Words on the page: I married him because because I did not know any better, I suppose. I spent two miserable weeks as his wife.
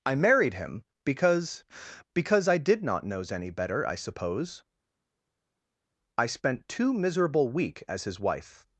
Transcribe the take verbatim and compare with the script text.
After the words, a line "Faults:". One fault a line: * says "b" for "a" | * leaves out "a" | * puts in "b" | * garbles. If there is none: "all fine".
I married him because because I did not knows any better, I suppose. I spent two miserable week as his wife.
Faults:
* says "knows" for "know"
* says "week" for "weeks"